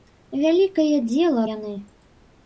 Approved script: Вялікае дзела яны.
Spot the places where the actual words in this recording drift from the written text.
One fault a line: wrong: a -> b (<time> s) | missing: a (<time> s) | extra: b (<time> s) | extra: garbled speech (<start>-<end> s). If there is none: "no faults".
no faults